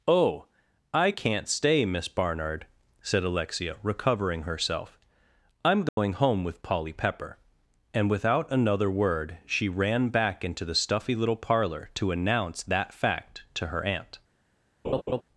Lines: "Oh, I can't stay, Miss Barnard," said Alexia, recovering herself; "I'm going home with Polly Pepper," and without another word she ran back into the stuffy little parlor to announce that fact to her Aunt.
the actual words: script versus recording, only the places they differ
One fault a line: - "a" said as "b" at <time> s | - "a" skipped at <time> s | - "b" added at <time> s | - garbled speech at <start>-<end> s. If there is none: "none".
none